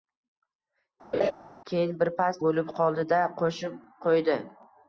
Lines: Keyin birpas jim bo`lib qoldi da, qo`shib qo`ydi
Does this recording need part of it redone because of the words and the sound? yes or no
yes